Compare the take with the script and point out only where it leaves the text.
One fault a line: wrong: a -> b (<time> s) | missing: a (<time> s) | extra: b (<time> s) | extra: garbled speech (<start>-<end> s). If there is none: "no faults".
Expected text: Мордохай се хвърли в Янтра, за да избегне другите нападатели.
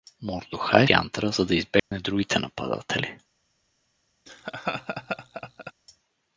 missing: се хвърли в (0.9 s)